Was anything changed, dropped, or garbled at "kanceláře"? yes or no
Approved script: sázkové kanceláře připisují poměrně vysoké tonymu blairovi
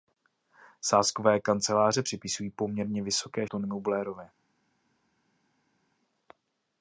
no